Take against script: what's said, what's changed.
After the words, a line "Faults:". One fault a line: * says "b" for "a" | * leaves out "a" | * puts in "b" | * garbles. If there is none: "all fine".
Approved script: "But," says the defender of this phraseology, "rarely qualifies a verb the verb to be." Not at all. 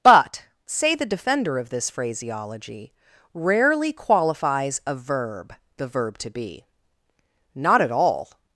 "But," say the defender of this phraseology, "rarely qualifies a verb the verb to be." Not at all.
Faults:
* says "say" for "says"